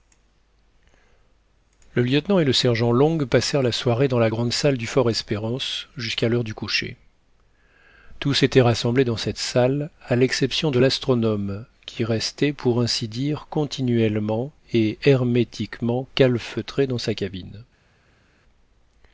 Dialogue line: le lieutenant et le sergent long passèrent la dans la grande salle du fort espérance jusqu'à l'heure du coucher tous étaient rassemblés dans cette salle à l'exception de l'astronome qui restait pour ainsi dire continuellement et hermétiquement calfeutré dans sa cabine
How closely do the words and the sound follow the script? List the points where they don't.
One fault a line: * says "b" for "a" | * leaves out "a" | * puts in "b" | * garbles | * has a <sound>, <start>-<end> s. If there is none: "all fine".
* puts in "soirée"